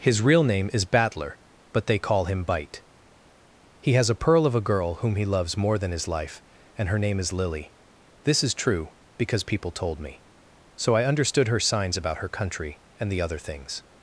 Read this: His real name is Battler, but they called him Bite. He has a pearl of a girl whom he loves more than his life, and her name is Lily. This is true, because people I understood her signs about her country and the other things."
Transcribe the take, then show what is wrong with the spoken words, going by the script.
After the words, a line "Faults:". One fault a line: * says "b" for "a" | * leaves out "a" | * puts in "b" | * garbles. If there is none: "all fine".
His real name is Battler, but they call him Bite. He has a pearl of a girl whom he loves more than his life, and her name is Lily. This is true, because people told me. So I understood her signs about her country and the other things."
Faults:
* says "call" for "called"
* puts in "told me So"